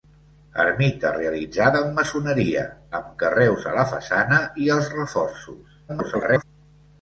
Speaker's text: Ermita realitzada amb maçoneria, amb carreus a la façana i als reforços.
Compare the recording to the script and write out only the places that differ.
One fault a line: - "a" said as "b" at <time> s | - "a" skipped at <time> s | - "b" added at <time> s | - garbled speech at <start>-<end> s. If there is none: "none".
- garbled speech at 5.9-6.4 s